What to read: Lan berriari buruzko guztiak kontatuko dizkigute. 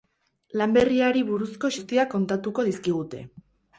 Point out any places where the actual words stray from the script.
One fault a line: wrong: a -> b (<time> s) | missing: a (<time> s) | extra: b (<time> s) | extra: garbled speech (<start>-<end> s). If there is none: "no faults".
no faults